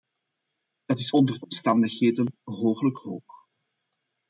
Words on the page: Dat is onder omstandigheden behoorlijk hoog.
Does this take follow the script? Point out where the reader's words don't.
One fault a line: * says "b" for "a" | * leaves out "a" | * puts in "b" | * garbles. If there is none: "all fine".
all fine